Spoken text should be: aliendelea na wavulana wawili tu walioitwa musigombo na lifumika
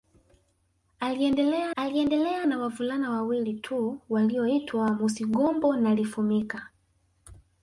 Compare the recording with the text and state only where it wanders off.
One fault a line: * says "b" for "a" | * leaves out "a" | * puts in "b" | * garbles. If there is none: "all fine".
* puts in "aliendelea"